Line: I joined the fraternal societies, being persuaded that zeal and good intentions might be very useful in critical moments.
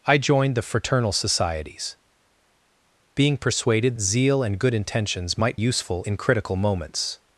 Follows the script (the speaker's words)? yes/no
no